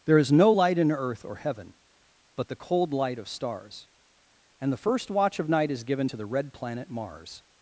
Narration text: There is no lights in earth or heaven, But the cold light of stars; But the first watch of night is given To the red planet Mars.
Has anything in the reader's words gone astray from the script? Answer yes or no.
yes